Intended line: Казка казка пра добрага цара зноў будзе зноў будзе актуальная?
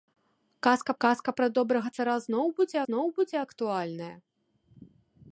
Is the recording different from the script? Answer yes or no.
no